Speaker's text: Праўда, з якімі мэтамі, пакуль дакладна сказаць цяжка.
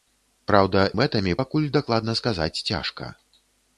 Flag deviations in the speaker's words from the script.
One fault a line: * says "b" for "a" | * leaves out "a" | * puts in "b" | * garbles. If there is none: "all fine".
* leaves out "з якімі"